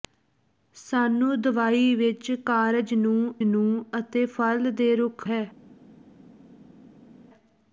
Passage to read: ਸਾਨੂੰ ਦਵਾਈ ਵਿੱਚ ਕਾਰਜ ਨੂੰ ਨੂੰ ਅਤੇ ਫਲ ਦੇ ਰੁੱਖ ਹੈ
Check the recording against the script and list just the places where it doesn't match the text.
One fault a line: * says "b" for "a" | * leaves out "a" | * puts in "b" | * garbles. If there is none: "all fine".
all fine